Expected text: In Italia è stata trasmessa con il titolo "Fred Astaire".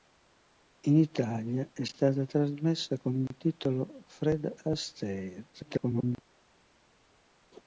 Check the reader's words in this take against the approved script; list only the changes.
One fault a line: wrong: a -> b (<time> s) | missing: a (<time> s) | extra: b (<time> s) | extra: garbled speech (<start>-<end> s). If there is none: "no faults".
extra: garbled speech (5.5-6.2 s)